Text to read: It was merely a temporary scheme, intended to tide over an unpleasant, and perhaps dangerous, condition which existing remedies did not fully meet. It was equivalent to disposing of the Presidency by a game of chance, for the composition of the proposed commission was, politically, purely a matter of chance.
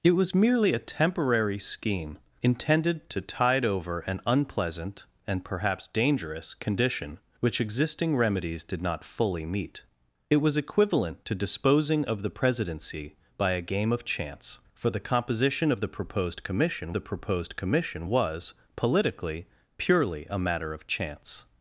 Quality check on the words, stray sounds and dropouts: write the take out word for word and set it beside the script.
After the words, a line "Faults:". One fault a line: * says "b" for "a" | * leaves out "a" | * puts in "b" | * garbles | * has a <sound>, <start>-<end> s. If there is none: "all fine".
It was merely a temporary scheme, intended to tide over an unpleasant, and perhaps dangerous, condition which existing remedies did not fully meet. It was equivalent to disposing of the Presidency by a game of chance, for the composition of the proposed commission the proposed commission was, politically, purely a matter of chance.
Faults:
* puts in "the proposed commission"